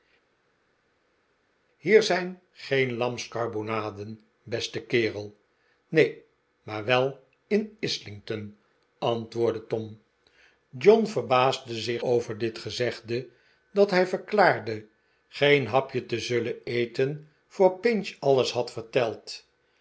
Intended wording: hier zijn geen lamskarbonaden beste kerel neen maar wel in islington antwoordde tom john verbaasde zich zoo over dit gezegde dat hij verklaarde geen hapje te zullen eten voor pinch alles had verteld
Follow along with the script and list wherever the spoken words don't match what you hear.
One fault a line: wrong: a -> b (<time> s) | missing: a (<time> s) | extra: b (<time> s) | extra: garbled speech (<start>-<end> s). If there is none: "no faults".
missing: zoo (12.0 s)